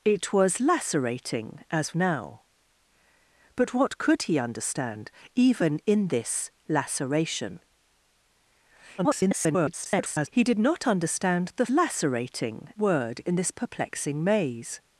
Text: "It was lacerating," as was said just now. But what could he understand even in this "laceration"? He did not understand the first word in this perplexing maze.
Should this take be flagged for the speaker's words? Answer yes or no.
yes